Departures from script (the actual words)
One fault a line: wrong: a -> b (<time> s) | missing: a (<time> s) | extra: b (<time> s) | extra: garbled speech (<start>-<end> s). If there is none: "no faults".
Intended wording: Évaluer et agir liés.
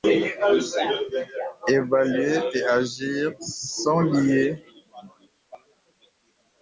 extra: sont (3.4 s)